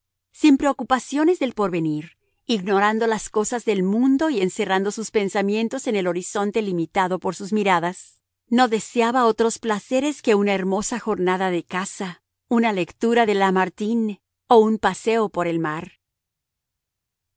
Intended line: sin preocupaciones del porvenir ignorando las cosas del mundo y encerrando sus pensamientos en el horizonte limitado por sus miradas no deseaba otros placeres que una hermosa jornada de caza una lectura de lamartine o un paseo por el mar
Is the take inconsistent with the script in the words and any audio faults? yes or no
no